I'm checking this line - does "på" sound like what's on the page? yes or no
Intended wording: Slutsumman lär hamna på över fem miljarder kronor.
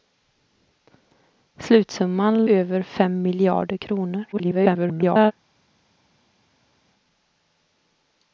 no